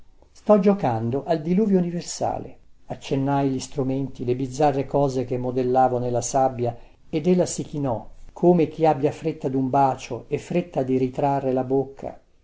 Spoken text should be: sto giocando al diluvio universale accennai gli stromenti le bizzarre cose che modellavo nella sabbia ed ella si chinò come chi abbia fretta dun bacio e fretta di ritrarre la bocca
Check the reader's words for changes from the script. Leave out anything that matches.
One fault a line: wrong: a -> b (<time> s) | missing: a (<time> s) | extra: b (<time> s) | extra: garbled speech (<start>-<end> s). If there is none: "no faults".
no faults